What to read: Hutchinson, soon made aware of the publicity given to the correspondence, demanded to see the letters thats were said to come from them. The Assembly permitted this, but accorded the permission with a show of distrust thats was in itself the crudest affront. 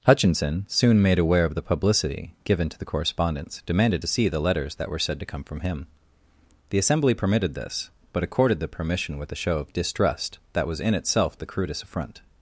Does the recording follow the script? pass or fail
fail